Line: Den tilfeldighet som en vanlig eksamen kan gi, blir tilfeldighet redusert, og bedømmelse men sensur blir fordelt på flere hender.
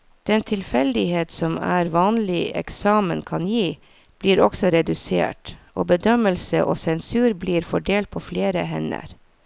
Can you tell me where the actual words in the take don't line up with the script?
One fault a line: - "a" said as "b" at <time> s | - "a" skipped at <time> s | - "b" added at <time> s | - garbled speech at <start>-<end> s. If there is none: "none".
- "tilfeldighet" said as "også" at 4.4 s
- "men" said as "og" at 6.7 s